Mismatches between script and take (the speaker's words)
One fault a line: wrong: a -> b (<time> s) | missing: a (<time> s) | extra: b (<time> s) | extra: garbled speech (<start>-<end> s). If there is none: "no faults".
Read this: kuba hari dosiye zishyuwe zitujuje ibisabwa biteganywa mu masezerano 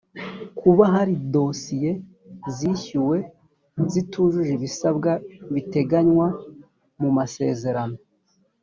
no faults